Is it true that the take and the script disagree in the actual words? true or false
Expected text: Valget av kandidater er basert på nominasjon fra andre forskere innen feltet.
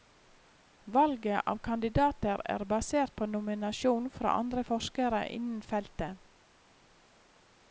false